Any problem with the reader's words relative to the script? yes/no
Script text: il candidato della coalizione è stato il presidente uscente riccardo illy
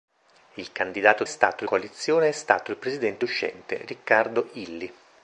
yes